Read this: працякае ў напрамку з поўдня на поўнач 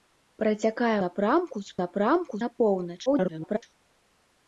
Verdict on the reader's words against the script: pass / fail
fail